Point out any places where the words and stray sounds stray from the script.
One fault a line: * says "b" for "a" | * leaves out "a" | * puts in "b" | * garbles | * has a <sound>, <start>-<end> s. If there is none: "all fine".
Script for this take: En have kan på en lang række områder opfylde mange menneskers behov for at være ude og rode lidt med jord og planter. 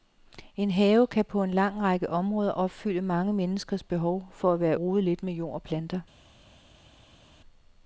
* leaves out "ude og"